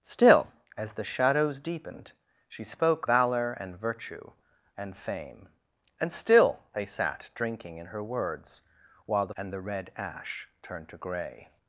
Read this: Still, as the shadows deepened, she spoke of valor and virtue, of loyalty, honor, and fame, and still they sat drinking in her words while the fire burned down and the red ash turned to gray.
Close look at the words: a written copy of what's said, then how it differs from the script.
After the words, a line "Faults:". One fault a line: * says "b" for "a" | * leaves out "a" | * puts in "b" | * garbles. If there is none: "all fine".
Still, as the shadows deepened, she spoke valor and virtue, and fame, and still they sat drinking in her words while the and the red ash turned to gray.
Faults:
* leaves out "of"
* leaves out "of loyalty honor"
* leaves out "fire burned down"